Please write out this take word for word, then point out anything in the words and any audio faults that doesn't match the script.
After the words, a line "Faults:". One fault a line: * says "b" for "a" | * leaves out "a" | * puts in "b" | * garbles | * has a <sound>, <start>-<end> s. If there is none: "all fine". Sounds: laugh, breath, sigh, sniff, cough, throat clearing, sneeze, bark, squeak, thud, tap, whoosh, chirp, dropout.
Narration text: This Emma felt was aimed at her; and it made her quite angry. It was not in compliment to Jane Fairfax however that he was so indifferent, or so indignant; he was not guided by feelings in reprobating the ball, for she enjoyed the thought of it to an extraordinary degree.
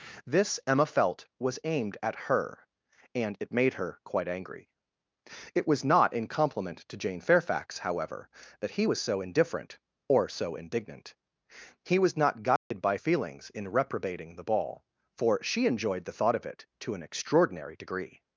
This Emma felt was aimed at her; and it made her quite angry. It was not in compliment to Jane Fairfax however that he was so indifferent, or so indignant; he was not guided by feelings in reprobating the ball, for she enjoyed the thought of it to an extraordinary degree.
Faults:
* has a dropout, 12.6-12.7 s